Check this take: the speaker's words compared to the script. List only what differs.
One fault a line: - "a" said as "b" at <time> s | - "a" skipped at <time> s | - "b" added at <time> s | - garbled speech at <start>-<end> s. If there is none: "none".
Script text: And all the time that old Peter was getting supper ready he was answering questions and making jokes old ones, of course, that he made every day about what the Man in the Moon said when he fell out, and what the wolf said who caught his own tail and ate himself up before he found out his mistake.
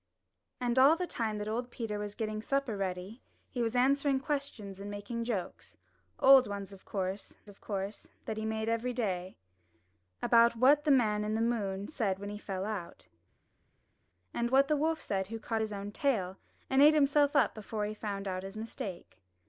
- "of course" added at 7.5 s